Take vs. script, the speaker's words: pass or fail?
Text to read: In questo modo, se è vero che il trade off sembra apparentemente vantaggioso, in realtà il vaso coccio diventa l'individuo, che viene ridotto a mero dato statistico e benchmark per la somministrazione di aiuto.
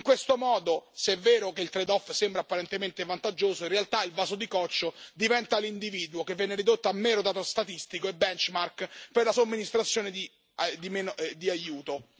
fail